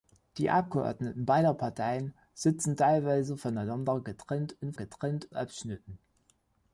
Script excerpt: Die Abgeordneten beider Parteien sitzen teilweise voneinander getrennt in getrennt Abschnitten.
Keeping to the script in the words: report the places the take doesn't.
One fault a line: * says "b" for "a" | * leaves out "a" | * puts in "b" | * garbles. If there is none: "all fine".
all fine